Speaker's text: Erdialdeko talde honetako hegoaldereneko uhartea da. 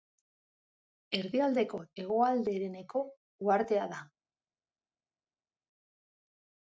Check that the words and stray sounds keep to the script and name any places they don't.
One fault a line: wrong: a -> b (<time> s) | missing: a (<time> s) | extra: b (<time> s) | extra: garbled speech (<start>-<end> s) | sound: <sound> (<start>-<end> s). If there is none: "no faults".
missing: talde honetako (1.8 s)